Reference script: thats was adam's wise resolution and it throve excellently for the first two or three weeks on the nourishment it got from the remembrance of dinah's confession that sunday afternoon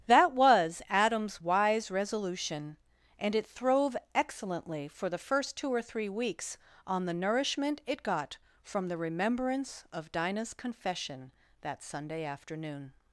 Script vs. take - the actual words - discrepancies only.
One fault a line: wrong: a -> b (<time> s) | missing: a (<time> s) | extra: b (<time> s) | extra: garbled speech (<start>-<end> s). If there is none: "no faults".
wrong: thats -> that (0.1 s)